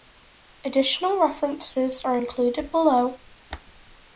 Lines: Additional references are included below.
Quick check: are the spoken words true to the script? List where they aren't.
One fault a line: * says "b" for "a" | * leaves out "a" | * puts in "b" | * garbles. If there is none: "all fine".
all fine